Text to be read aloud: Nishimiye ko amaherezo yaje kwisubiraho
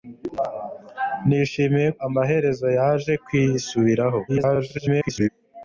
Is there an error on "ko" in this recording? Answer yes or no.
yes